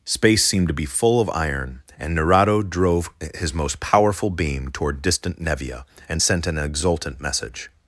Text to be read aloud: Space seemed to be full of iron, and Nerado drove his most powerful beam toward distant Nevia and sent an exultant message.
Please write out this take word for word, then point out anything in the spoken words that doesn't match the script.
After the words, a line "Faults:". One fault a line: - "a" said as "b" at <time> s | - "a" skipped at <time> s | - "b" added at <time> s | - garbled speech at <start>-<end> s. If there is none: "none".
Space seemed to be full of iron, and Nerado drove his most powerful beam toward distant Nevia and sent an exultant message.
Faults:
none